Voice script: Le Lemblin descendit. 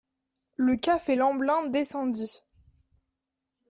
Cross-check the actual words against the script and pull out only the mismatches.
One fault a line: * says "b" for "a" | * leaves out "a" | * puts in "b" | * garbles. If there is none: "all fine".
* puts in "café"